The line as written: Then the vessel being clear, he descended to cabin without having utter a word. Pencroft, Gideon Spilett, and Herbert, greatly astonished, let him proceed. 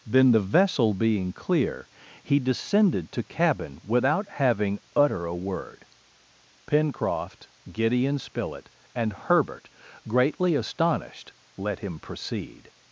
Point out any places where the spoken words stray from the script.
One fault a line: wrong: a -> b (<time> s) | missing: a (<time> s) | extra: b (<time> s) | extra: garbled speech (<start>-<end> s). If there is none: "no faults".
no faults